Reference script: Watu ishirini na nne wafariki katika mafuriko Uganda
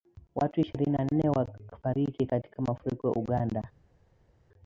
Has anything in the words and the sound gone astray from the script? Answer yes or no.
no